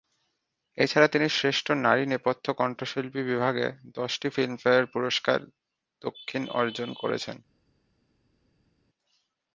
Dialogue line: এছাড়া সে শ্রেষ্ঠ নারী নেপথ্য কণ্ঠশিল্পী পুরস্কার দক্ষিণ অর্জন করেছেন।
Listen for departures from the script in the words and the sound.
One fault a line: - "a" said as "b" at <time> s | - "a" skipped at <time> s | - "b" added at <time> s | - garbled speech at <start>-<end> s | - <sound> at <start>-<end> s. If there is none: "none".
- "সে" said as "তিনি" at 1.1 s
- "বিভাগে দশটি ফিল্মফেয়ার" added at 3.2 s